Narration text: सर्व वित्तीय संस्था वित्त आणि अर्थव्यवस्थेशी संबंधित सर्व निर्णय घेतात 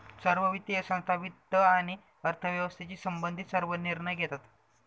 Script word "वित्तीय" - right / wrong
right